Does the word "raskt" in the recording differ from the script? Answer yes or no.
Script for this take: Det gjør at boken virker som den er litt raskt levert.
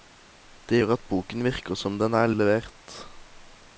yes